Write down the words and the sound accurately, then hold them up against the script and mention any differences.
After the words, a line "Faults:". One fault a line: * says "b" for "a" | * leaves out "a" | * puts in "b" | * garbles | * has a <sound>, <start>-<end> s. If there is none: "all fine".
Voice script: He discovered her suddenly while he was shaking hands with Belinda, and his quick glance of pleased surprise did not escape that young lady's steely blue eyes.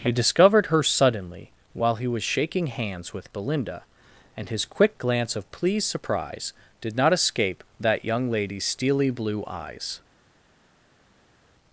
He discovered her suddenly while he was shaking hands with Belinda, and his quick glance of pleased surprise did not escape that young lady's steely blue eyes.
Faults:
all fine